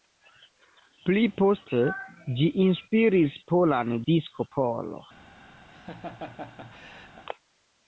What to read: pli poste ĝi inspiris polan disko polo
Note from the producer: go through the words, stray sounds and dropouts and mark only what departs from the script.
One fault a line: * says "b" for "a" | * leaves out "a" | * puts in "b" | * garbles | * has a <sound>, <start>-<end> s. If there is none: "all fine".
* has a laugh, 5.7-7.2 s